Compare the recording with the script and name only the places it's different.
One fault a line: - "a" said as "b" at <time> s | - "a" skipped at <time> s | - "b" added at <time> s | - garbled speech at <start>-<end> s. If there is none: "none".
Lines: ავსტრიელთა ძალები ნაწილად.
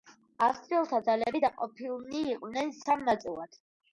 - "დაყოფილნი იყვნენ სამ" added at 1.4 s